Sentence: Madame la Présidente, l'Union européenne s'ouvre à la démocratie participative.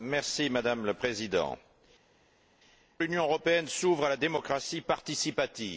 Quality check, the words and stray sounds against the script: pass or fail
pass